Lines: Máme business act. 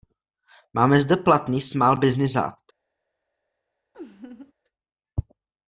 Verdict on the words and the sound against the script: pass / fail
fail